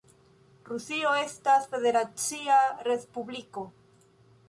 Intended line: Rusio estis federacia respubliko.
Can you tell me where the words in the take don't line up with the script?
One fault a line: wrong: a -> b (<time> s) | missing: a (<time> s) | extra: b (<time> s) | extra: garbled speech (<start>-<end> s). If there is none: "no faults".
wrong: estis -> estas (1.2 s)